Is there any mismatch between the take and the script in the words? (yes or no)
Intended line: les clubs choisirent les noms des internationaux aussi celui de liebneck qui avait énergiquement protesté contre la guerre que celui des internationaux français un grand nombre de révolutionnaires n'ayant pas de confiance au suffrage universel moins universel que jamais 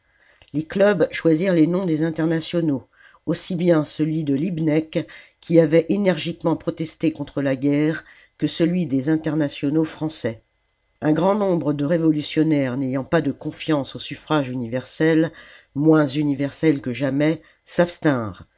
yes